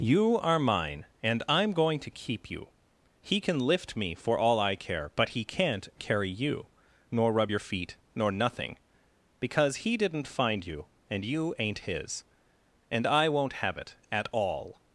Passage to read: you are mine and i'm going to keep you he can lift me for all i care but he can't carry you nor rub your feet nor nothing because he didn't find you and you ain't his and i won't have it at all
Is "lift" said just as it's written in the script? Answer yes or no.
yes